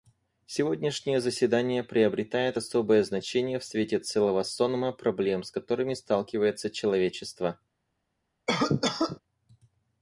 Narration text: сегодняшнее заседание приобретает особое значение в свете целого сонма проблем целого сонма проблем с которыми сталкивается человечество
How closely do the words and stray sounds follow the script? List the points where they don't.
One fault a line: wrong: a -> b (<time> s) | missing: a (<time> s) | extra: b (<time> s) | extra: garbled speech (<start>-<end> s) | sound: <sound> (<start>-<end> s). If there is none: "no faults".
missing: целого сонма проблем (5.4 s)
sound: cough (8.5-9.2 s)